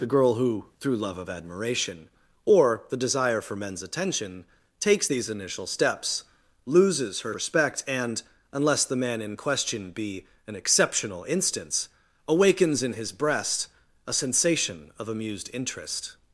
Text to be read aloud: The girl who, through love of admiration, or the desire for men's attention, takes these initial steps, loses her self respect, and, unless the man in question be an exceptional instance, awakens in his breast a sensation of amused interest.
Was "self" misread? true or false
true